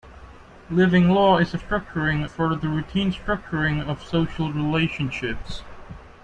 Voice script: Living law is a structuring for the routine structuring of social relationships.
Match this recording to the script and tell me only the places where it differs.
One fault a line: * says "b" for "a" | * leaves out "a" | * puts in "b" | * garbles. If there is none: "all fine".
all fine